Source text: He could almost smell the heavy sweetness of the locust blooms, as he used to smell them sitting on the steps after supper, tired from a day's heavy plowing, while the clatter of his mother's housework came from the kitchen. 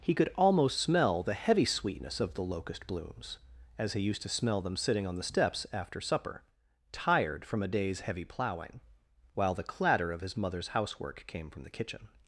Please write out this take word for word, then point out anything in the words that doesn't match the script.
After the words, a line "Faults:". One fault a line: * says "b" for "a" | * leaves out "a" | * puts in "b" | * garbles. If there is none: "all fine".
He could almost smell the heavy sweetness of the locust blooms, as he used to smell them sitting on the steps after supper, tired from a day's heavy plowing, while the clatter of his mother's housework came from the kitchen.
Faults:
all fine